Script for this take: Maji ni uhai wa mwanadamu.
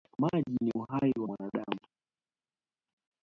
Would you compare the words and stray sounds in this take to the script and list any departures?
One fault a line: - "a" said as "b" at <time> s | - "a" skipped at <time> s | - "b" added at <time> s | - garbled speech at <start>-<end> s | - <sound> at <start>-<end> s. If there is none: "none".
none